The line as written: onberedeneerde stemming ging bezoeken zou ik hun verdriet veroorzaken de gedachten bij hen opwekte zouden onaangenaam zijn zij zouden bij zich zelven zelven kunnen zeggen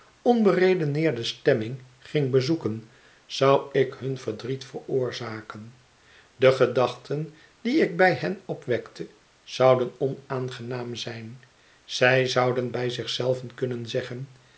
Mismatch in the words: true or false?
true